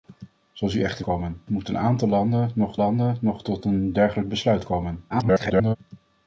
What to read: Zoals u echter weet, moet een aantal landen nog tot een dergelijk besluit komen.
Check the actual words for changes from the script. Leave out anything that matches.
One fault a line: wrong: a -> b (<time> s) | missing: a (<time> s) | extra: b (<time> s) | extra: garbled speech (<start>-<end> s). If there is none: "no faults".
wrong: weet -> komen (1.0 s)
extra: landen nog (2.7 s)
extra: garbled speech (5.1-5.8 s)